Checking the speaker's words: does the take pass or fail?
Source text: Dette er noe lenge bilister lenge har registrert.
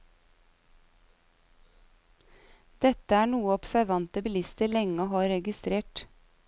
fail